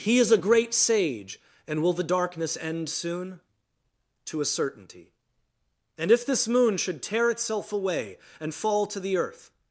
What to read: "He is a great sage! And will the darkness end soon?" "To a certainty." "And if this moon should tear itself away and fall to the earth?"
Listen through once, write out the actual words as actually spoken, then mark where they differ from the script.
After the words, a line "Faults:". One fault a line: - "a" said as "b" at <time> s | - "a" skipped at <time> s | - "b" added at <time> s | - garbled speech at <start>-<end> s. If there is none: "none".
"He is a great sage! And will the darkness end soon?" "To a certainty." "And if this moon should tear itself away and fall to the earth?"
Faults:
none